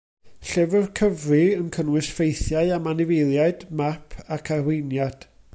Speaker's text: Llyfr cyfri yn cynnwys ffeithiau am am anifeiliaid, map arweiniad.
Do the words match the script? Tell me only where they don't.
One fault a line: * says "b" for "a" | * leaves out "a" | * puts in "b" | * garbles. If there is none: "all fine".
* leaves out "am"
* puts in "ac"